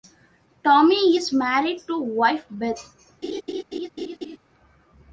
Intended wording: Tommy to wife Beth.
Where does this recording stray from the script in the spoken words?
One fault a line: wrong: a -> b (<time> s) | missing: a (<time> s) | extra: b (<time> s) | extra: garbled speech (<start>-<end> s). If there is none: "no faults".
extra: is married (1.1 s)